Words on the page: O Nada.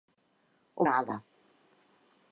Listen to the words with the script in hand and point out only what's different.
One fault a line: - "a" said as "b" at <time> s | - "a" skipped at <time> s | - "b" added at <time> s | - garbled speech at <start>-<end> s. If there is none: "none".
none